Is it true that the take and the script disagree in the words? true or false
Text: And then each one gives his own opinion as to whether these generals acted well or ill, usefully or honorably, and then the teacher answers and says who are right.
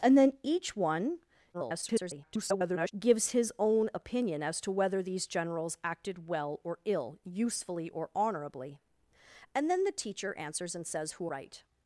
true